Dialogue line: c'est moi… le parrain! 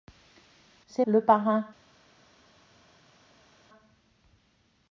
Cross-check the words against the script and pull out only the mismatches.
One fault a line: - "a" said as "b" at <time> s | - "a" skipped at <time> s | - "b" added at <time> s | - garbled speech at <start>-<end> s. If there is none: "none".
- "moi" skipped at 1.1 s